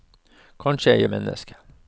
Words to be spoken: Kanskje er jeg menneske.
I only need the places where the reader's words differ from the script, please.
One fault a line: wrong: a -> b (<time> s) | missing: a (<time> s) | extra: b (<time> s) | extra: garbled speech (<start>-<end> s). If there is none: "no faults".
no faults